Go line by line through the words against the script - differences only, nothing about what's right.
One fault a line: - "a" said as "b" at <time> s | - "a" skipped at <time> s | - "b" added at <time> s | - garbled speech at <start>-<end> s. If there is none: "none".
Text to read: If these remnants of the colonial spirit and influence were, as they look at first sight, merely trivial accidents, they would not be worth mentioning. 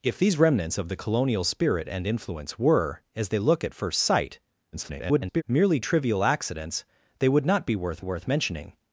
- garbled speech at 4.7-5.4 s
- "worth" added at 8.0 s